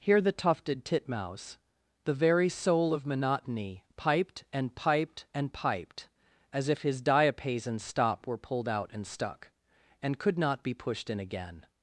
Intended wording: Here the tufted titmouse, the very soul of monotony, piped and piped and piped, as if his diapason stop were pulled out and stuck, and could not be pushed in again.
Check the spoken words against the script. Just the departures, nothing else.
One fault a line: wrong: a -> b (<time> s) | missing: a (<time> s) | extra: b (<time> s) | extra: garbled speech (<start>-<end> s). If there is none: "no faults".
no faults